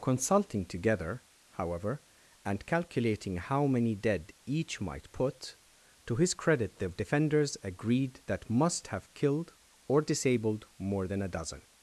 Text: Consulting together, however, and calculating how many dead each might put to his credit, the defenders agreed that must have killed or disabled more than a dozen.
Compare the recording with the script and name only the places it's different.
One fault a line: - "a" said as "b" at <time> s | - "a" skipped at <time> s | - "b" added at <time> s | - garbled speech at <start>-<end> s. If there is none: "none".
none